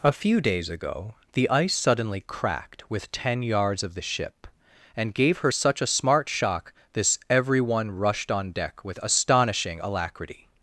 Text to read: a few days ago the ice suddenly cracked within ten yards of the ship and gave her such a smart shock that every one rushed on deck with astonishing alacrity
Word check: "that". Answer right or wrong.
wrong